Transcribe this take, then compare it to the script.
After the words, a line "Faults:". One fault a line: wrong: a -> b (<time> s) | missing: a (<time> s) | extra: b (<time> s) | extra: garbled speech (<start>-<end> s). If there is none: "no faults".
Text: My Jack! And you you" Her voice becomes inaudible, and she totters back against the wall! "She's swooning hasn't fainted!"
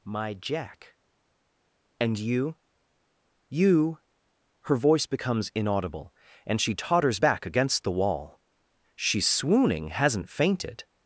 My Jack! And you you" Her voice becomes inaudible, and she totters back against the wall! "She's swooning hasn't fainted!"
Faults:
no faults